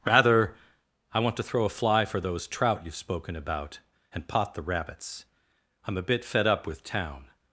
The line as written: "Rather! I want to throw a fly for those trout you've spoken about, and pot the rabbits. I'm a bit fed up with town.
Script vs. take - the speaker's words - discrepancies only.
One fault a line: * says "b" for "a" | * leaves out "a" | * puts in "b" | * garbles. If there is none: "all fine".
all fine